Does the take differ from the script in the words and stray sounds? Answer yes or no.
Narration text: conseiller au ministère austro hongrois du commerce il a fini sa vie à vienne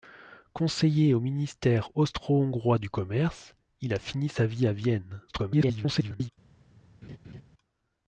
yes